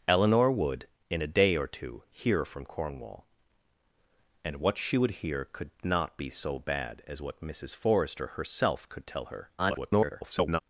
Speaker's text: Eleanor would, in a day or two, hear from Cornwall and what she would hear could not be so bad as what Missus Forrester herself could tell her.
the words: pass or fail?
fail